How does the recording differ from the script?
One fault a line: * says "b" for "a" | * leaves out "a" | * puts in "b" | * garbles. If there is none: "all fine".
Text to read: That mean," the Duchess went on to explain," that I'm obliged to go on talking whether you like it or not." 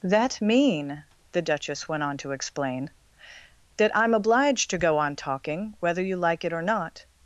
all fine